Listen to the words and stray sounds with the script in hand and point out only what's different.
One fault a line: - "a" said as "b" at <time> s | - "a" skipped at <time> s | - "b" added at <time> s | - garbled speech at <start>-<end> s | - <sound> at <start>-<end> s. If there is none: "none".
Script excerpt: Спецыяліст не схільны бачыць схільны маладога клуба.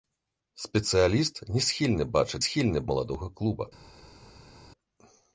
none